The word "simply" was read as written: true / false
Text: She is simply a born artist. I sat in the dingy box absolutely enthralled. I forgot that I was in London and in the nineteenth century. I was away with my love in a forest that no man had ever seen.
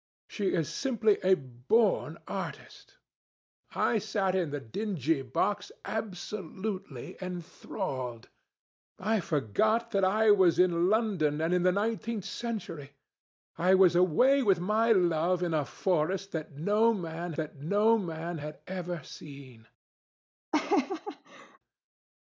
true